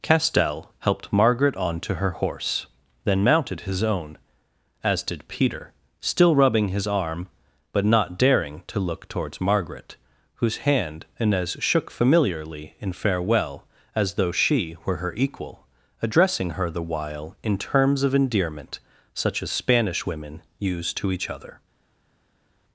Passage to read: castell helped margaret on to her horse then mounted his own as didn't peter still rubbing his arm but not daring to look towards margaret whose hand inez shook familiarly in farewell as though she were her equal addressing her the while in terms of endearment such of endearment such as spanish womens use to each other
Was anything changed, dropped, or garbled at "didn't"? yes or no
yes